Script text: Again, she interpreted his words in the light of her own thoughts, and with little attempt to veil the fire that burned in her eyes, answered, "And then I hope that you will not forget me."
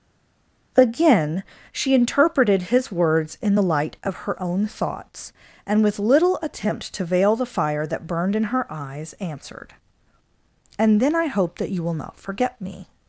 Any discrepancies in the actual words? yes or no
no